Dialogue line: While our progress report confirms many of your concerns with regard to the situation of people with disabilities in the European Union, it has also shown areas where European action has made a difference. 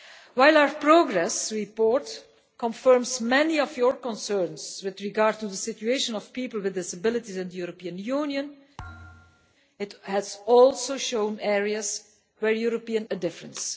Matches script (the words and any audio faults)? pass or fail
fail